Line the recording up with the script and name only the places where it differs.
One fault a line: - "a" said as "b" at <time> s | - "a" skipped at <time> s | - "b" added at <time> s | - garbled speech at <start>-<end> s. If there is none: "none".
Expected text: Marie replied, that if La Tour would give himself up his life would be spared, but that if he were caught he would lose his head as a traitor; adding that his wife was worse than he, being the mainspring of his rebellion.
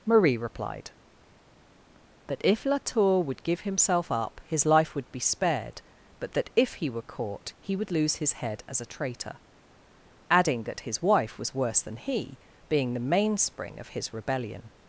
none